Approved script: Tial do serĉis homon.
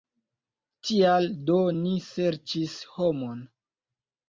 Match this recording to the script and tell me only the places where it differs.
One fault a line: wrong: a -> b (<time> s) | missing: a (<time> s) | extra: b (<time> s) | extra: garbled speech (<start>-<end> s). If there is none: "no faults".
extra: ni (1.8 s)